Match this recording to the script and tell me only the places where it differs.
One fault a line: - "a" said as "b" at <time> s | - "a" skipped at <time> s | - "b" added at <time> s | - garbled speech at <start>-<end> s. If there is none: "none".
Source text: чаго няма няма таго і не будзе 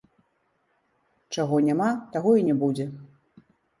- "няма" skipped at 1.9 s